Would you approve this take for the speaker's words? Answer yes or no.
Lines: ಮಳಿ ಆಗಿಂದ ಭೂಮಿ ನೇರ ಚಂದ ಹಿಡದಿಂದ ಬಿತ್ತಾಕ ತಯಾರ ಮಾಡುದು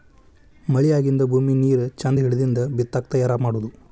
yes